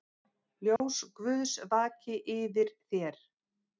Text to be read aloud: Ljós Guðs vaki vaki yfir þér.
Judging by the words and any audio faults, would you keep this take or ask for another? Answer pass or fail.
fail